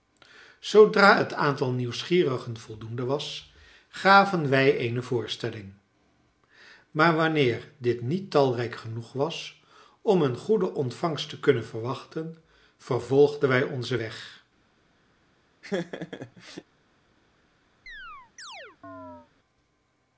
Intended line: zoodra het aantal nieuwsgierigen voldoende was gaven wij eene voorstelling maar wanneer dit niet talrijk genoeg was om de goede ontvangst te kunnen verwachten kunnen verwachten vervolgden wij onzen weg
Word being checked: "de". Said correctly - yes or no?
no